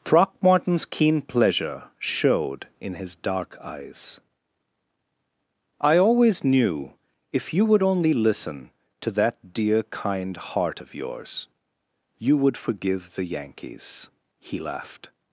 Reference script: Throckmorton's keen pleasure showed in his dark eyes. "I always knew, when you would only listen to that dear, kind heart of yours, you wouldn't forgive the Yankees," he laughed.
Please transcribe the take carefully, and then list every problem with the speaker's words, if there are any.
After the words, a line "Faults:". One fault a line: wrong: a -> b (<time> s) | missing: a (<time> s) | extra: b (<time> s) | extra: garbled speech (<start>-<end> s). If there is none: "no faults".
Throckmorton's keen pleasure showed in his dark eyes. "I always knew, if you would only listen to that dear, kind heart of yours, you would forgive the Yankees," he laughed.
Faults:
wrong: when -> if (7.3 s)
wrong: wouldn't -> would (12.4 s)